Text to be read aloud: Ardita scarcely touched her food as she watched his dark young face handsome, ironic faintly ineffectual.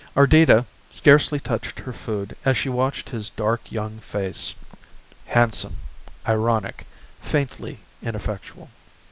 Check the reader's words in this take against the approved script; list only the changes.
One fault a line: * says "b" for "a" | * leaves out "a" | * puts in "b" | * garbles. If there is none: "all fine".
all fine